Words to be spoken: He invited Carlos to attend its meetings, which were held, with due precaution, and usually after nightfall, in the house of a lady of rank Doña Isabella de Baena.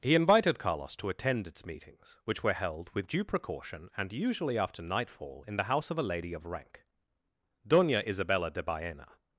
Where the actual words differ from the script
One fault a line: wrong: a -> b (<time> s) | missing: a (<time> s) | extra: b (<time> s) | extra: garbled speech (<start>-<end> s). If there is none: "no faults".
no faults